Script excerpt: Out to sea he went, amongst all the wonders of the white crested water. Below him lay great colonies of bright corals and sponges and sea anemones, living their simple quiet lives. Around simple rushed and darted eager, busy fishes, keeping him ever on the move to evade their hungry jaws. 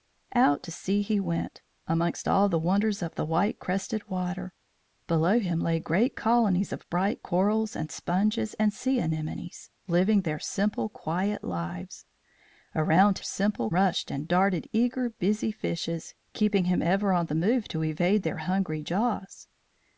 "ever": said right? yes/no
yes